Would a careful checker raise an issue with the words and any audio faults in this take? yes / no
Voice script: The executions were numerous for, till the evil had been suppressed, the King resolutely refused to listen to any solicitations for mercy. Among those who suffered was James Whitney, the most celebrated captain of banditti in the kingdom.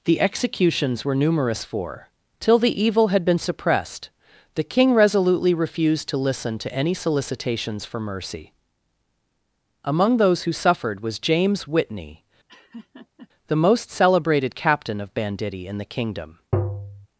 yes